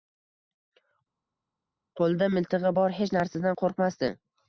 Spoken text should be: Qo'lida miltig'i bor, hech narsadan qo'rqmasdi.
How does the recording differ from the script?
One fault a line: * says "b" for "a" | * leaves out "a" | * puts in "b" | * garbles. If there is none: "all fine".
all fine